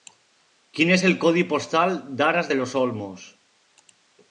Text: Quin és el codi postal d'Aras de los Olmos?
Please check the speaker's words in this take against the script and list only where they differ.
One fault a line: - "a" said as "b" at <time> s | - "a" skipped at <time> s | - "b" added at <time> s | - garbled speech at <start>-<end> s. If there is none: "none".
none